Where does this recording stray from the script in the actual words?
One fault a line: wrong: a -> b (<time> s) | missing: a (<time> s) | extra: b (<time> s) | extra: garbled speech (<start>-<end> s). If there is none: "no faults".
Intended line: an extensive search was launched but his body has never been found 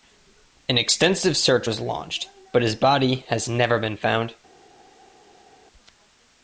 no faults